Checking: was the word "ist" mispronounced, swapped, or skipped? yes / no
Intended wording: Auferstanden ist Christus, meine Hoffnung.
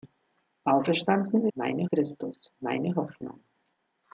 yes